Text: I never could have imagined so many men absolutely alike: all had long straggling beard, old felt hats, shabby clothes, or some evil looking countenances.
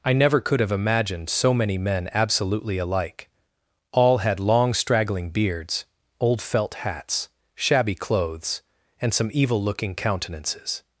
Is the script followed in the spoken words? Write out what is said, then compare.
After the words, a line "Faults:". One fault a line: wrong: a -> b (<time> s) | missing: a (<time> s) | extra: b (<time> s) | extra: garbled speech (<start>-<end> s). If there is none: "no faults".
I never could have imagined so many men absolutely alike: all had long straggling beards, old felt hats, shabby clothes, and some evil looking countenances.
Faults:
wrong: beard -> beards (5.3 s)
wrong: or -> and (9.0 s)